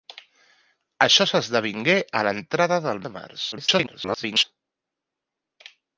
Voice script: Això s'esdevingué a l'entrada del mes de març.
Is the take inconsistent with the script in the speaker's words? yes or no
yes